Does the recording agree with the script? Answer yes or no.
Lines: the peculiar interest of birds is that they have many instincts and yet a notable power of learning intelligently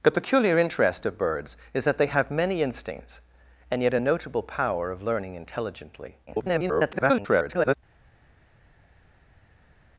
no